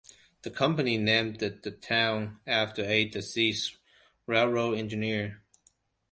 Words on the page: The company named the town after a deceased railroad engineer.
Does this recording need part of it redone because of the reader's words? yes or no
no